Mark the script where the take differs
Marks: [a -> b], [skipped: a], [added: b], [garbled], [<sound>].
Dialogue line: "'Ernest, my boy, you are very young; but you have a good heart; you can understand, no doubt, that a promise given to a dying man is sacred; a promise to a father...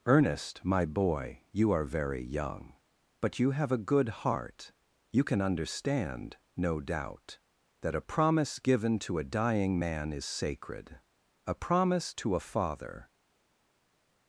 "'Ernest, my boy, you are very young; but you have a good heart; you can understand, no doubt, that a promise given to a dying man is sacred; a promise to a father...